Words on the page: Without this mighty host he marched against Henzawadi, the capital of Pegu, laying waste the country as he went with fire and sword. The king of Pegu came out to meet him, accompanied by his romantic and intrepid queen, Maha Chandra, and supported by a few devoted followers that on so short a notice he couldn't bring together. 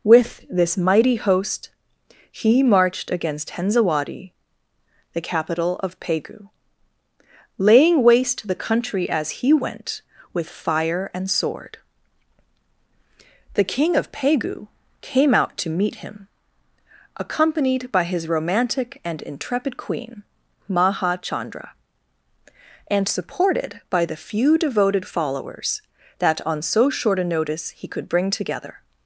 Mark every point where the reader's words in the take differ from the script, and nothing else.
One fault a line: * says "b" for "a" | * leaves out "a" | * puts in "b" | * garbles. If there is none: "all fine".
* says "With" for "Without"
* says "the" for "a"
* says "could" for "couldn't"